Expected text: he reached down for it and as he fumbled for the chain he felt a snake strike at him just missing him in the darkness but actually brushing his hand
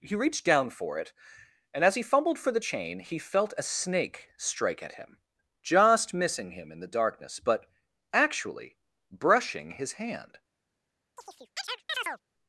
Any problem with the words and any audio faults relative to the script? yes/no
yes